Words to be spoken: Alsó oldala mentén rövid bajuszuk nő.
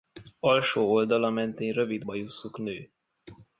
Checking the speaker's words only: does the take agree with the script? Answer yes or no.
yes